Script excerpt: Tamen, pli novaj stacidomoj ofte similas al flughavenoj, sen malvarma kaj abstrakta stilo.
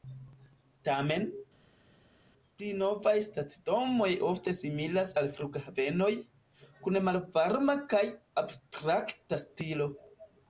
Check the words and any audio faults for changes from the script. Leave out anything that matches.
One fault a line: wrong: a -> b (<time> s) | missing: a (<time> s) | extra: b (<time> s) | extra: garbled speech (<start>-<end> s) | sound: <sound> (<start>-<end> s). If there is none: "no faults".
wrong: sen -> kun (6.9 s)